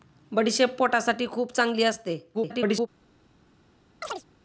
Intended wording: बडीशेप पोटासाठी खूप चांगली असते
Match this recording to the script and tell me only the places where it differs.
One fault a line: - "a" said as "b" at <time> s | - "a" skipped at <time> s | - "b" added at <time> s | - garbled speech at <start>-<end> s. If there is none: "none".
- garbled speech at 2.3-2.9 s